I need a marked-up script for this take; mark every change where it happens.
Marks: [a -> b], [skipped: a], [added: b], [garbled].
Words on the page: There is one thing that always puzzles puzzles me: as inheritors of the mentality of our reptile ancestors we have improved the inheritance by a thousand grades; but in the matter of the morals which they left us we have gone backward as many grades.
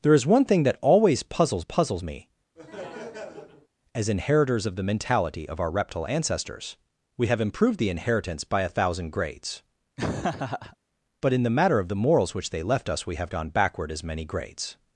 There is one thing that always puzzles puzzles me: as inheritors of the mentality of our reptile ancestors we have improved the inheritance by a thousand grades; but in the matter of the morals which they left us we have gone backward as many grades.